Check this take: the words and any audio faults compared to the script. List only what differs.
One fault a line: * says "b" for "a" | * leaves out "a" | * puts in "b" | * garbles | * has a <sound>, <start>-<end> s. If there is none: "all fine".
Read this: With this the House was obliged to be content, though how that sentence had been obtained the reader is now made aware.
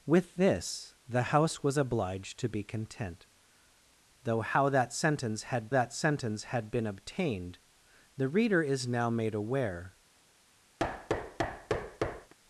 * puts in "that sentence had"
* has a thud, 10.8-12.3 s